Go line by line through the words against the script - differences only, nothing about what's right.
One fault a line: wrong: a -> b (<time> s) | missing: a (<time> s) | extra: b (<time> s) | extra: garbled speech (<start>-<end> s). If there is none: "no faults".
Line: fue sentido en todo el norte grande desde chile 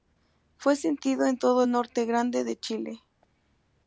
wrong: desde -> de (2.4 s)